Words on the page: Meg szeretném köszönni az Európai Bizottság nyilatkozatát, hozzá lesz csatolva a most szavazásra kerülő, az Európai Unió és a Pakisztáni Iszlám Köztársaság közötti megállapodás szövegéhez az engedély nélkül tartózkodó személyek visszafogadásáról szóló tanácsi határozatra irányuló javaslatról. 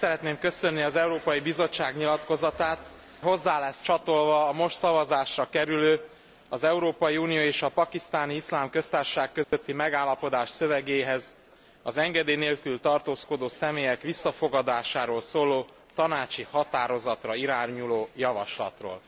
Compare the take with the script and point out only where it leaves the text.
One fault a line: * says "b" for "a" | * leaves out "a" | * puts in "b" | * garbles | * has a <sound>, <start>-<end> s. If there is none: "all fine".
* has a dropout, 9.4-9.5 s